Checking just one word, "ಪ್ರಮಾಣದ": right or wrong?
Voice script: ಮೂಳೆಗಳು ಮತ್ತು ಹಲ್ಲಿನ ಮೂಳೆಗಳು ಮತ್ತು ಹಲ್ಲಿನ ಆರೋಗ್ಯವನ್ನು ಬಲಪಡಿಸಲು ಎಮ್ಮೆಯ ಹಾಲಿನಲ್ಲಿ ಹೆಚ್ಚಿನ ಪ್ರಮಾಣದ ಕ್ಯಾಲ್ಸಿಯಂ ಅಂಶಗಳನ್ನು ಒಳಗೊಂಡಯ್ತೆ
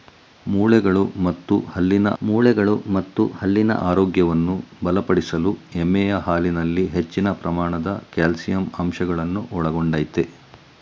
right